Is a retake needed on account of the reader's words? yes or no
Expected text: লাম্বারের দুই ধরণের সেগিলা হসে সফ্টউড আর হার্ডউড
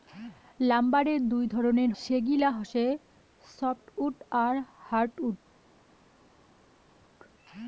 no